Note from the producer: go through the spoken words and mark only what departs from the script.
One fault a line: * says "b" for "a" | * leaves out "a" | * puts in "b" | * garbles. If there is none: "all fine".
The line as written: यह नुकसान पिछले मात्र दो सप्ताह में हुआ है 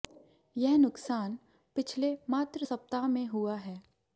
* leaves out "दो"